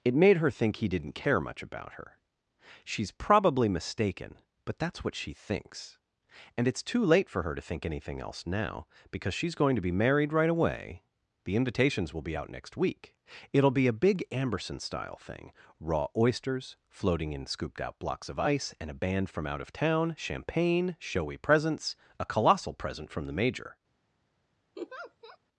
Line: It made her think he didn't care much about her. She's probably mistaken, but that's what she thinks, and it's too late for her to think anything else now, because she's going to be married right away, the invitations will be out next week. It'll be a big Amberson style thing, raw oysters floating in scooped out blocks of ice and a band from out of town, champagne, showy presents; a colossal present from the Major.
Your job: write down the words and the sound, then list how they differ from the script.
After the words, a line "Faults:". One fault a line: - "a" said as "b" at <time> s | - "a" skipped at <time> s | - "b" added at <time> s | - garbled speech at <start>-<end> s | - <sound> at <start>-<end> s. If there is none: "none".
It made her think he didn't care much about her. She's probably mistaken, but that's what she thinks, and it's too late for her to think anything else now, because she's going to be married right away, the invitations will be out next week. It'll be a big Amberson style thing, raw oysters floating in scooped out blocks of ice and a band from out of town, champagne, showy presents; a colossal present from the Major.
Faults:
- laugh at 24.8-25.4 s